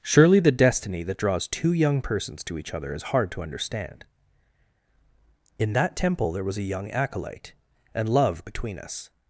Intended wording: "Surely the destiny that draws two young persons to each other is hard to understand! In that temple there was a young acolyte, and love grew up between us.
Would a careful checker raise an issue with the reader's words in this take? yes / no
yes